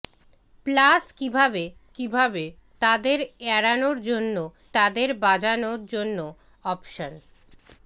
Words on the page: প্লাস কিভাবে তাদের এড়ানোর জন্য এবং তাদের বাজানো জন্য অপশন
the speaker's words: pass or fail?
fail